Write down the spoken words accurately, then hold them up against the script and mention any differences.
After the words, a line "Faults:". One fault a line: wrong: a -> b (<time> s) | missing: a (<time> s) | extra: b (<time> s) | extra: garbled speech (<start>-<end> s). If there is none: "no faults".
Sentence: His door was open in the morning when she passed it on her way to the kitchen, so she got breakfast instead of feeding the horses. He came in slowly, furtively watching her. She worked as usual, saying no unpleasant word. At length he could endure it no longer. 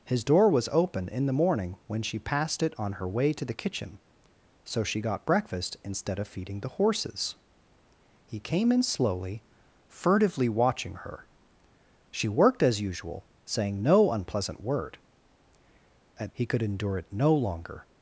His door was open in the morning when she passed it on her way to the kitchen, so she got breakfast instead of feeding the horses. He came in slowly, furtively watching her. She worked as usual, saying no unpleasant word. At he could endure it no longer.
Faults:
missing: length (16.3 s)